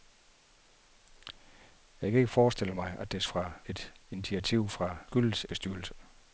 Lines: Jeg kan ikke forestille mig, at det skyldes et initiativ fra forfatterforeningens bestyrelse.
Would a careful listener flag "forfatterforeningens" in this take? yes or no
yes